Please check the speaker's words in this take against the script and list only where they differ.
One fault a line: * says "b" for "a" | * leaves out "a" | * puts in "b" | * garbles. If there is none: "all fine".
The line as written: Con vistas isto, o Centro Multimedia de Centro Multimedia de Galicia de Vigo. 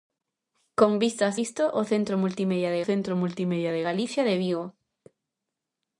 all fine